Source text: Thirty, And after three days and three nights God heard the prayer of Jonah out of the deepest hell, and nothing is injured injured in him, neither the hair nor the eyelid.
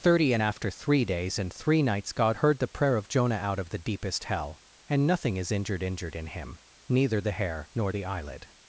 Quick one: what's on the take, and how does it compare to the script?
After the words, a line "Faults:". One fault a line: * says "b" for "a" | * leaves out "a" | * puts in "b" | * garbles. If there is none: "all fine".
Thirty, And after three days and three nights God heard the prayer of Jonah out of the deepest hell, and nothing is injured injured in him, neither the hair nor the eyelid.
Faults:
all fine